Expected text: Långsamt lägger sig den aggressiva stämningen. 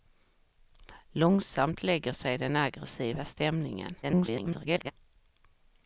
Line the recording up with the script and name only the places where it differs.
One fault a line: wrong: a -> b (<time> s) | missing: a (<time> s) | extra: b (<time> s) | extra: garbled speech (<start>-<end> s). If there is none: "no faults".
extra: garbled speech (4.0-4.9 s)